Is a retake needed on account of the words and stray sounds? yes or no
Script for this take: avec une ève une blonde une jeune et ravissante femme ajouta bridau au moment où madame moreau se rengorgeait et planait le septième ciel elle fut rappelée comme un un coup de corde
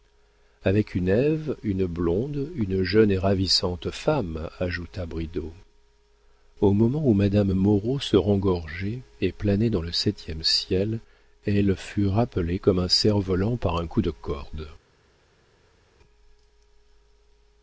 yes